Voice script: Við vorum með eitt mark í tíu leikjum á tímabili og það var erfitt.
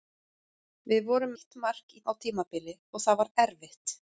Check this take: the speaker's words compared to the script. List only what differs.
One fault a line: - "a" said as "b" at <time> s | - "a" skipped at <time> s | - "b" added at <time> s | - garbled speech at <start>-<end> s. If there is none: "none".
- "með" skipped at 1.4 s
- "tíu leikjum" skipped at 2.0 s